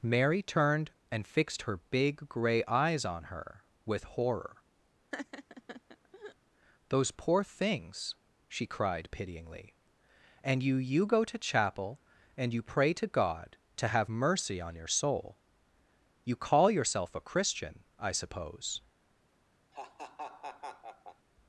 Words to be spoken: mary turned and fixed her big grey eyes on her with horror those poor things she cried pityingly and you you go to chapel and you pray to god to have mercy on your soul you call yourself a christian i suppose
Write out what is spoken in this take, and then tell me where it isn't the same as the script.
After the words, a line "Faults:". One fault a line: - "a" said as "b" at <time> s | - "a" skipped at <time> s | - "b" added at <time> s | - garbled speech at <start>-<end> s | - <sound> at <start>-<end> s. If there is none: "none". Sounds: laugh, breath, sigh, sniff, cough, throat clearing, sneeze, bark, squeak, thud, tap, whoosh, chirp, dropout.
mary turned and fixed her big grey eyes on her with horror those poor things she cried pityingly and you you go to chapel and you pray to god to have mercy on your soul you call yourself a christian i suppose
Faults:
- laugh at 5.1-6.4 s
- laugh at 19.7-21.3 s